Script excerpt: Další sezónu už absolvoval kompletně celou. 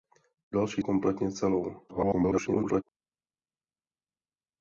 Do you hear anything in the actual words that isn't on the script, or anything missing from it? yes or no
yes